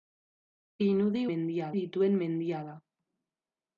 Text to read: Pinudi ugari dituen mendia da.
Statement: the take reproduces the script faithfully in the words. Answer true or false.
false